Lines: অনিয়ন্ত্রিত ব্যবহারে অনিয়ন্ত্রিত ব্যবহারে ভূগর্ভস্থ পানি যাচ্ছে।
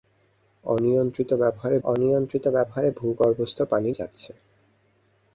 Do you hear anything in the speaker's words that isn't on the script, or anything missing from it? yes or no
no